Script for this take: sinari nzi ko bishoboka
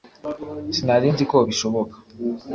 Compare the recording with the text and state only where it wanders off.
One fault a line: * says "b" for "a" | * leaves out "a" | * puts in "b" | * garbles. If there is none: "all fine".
all fine